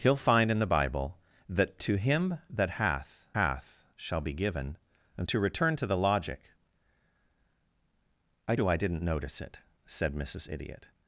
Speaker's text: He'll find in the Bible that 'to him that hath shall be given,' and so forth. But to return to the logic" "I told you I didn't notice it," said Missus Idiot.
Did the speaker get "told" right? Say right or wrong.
wrong